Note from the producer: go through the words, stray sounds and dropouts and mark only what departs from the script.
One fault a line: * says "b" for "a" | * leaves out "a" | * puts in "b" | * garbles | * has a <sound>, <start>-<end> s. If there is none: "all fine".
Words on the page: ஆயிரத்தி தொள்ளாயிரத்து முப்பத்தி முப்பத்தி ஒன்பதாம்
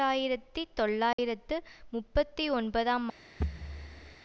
* has a dropout, 1.1-1.2 s
* leaves out "முப்பத்தி"
* has a thud, 3.4-4.2 s